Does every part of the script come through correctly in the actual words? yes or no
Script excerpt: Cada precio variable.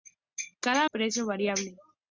yes